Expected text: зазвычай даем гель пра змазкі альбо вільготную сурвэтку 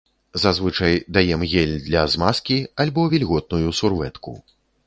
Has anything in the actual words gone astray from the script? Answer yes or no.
yes